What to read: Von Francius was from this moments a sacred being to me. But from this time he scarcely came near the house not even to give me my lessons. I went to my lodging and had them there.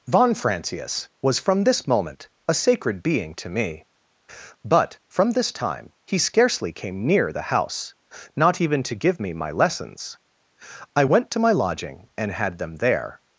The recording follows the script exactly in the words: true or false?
false